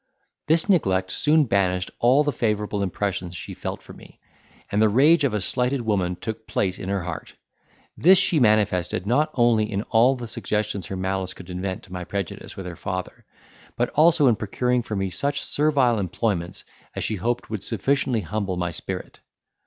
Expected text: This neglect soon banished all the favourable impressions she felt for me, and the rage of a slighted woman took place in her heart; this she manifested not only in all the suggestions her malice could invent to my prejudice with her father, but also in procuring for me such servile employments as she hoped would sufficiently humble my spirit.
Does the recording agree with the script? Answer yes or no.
yes